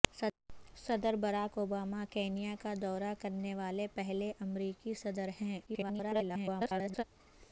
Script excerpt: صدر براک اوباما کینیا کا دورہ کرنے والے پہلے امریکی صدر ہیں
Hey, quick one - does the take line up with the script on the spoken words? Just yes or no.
no